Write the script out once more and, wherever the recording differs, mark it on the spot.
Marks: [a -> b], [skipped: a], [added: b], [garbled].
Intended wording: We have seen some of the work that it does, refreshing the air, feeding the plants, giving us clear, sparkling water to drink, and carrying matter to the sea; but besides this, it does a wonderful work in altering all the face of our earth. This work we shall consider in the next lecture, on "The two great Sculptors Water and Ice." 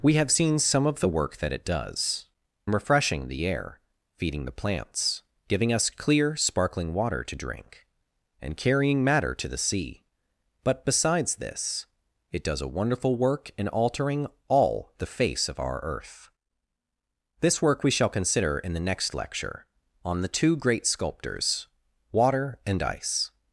We have seen some of the work that it does, refreshing the air, feeding the plants, giving us clear, sparkling water to drink, and carrying matter to the sea; but besides this, it does a wonderful work in altering all the face of our earth. This work we shall consider in the next lecture, on "The two great Sculptors Water and Ice."